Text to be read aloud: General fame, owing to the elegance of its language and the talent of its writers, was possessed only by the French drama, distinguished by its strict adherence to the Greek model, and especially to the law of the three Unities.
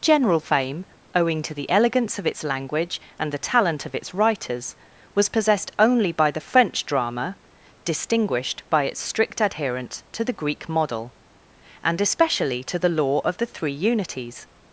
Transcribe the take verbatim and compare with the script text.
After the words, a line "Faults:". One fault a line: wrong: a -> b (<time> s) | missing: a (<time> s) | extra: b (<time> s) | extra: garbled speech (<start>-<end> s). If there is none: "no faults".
General fame, owing to the elegance of its language and the talent of its writers, was possessed only by the French drama, distinguished by its strict adherence to the Greek model, and especially to the law of the three Unities.
Faults:
no faults